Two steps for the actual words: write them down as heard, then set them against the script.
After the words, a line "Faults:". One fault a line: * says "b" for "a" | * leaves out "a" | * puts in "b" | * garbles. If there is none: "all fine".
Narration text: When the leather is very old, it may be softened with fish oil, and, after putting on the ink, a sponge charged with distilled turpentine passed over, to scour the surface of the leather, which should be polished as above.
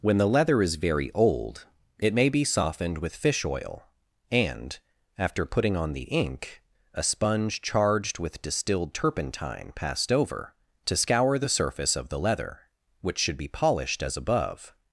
When the leather is very old, it may be softened with fish oil, and, after putting on the ink, a sponge charged with distilled turpentine passed over, to scour the surface of the leather, which should be polished as above.
Faults:
all fine